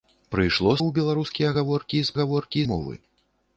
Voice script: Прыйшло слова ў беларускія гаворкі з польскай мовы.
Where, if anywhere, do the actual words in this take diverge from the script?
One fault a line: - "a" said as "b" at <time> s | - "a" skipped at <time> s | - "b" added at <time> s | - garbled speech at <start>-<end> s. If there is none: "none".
- "слова" skipped at 0.7 s
- "польскай" said as "гаворкі" at 2.2 s